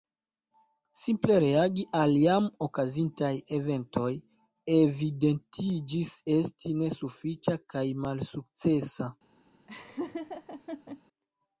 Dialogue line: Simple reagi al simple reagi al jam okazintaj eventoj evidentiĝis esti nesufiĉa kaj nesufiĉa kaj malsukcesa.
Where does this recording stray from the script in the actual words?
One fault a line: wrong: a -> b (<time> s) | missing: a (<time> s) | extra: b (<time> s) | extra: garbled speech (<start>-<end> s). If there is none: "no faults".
missing: simple reagi al (2.1 s)
missing: nesufiĉa kaj (7.9 s)